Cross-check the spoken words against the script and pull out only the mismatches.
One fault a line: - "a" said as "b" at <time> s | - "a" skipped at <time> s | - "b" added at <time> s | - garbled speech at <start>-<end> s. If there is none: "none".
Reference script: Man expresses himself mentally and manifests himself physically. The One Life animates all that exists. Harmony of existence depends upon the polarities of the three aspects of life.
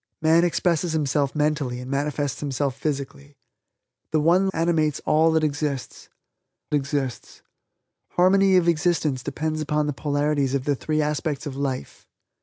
- "Life" skipped at 4.5 s
- "exists" added at 6.7 s